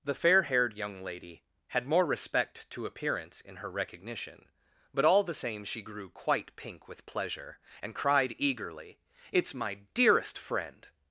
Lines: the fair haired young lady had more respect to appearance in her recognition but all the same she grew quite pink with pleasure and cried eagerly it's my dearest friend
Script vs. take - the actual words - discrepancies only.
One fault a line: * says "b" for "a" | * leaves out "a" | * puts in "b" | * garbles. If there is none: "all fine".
all fine